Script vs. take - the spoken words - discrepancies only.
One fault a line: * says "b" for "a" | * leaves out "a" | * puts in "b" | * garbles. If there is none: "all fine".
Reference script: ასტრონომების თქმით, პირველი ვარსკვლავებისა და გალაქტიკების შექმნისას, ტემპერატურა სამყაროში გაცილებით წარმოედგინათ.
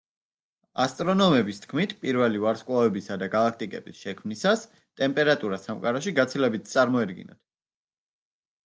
all fine